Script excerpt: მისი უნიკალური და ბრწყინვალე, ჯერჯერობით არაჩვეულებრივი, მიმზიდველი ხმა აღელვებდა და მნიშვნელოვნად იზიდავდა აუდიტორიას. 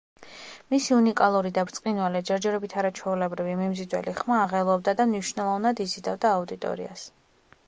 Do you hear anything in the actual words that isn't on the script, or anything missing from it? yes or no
no